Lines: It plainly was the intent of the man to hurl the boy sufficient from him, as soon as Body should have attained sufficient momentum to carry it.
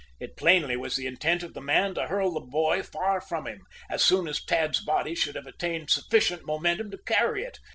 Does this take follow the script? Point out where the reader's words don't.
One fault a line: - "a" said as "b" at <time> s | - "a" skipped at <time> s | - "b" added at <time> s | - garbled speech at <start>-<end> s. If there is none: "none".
- "sufficient" said as "far" at 2.8 s
- "Tad's" added at 4.4 s